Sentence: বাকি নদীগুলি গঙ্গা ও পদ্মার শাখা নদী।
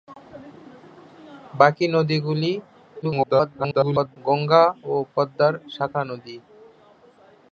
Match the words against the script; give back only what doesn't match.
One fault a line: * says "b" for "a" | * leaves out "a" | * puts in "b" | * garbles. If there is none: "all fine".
* garbles